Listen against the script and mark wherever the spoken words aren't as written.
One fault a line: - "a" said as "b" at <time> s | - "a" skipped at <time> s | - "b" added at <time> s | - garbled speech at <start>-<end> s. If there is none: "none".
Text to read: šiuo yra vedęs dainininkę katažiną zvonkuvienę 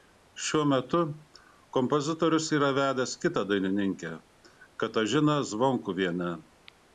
- "metu kompozitorius" added at 0.7 s
- "kitą" added at 3.3 s